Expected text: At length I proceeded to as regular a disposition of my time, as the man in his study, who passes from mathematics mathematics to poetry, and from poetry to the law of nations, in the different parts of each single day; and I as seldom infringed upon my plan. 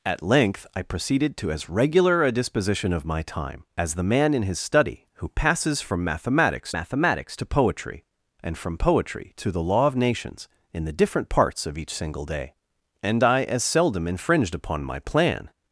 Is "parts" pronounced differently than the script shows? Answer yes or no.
no